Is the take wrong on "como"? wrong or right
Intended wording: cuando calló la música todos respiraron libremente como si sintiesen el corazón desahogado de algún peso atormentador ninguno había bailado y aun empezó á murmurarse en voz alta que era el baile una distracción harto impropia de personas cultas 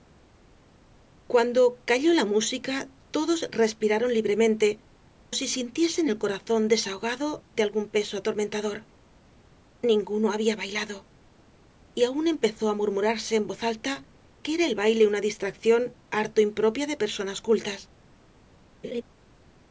wrong